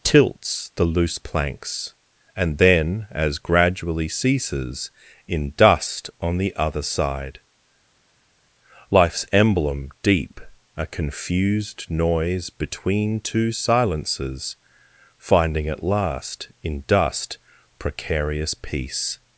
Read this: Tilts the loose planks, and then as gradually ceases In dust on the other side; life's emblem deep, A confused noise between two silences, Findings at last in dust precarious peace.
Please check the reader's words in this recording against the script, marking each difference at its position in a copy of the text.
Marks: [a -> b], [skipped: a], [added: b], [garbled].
Tilts the loose planks, and then as gradually ceases In dust on the other side; life's emblem deep, A confused noise between two silences, [Findings -> Finding] at last in dust precarious peace.